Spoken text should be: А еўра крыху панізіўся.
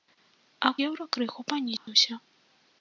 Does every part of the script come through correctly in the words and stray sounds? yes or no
no